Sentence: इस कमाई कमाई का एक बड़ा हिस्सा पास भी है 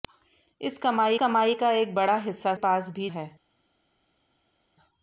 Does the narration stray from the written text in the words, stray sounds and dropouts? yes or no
no